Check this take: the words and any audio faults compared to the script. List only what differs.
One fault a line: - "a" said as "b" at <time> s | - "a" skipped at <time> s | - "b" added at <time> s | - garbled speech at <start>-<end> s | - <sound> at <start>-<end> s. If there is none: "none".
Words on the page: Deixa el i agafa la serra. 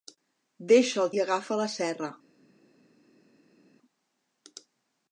none